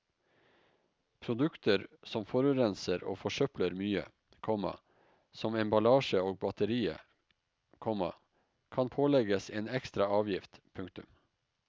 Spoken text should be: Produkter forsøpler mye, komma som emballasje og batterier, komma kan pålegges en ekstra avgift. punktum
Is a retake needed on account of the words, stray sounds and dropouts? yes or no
yes